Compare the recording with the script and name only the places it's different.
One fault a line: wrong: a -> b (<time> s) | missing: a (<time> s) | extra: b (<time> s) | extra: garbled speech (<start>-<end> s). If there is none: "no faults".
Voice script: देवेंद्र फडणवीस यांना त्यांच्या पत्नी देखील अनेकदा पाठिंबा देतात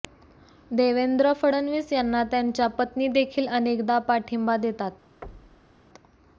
no faults